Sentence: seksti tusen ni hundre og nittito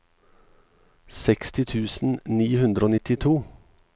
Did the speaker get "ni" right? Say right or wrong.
right